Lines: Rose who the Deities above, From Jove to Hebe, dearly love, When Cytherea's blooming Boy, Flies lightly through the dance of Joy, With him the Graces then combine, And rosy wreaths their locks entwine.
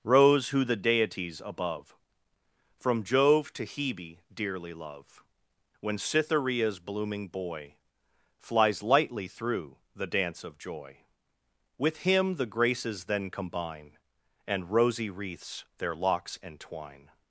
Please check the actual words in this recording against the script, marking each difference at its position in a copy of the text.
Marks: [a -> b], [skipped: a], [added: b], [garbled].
Rose who the Deities above, From Jove to Hebe, dearly love, When Cytherea's blooming Boy, Flies lightly through the dance of Joy, With him the Graces then combine, And rosy wreaths their locks entwine.